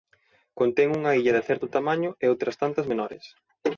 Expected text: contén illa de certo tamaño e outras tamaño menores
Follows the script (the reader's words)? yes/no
no